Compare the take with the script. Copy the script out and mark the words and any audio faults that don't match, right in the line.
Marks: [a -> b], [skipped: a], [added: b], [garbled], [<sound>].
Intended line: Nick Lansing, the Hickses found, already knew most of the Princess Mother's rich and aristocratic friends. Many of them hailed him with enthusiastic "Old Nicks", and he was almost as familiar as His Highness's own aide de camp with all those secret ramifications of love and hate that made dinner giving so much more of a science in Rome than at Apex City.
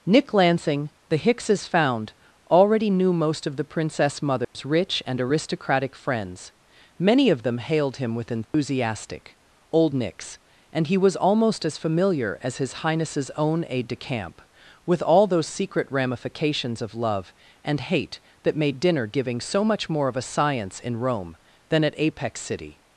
Nick Lansing, the Hickses found, already knew most of the Princess Mother's [dropout] rich and aristocratic friends. Many of them hailed him with enthusiastic [dropout] "Old Nicks", and he was almost as familiar as His Highness's own aide de camp with all those secret ramifications of love and hate that made dinner giving so much more of a science in Rome than at Apex City.